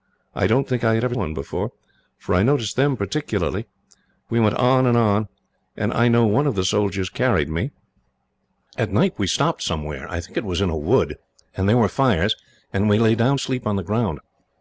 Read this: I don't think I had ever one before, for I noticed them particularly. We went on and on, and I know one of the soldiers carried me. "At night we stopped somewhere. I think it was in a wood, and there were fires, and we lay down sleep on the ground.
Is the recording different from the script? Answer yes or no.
no